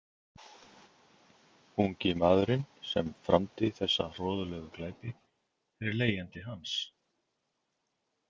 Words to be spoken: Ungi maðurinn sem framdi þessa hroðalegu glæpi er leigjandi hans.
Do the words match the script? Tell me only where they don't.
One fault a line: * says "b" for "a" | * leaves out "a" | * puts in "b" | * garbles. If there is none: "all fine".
all fine